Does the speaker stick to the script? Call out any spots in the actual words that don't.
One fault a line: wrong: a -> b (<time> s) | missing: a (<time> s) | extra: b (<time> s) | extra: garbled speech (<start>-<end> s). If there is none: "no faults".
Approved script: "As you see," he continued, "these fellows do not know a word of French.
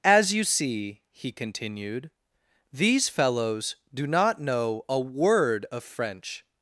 no faults